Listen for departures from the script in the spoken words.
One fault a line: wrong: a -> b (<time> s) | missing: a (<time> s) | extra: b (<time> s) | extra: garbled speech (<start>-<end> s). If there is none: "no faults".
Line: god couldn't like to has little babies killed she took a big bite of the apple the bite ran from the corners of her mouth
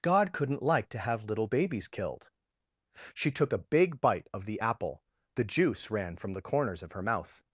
wrong: has -> have (1.0 s)
wrong: bite -> juice (5.4 s)